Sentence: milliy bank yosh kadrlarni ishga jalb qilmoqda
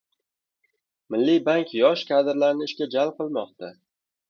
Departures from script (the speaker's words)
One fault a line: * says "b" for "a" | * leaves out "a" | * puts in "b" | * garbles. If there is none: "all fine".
all fine